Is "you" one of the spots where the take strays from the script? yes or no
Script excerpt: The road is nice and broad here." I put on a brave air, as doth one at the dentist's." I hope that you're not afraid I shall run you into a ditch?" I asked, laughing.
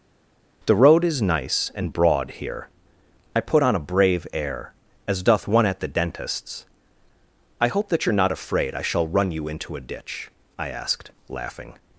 no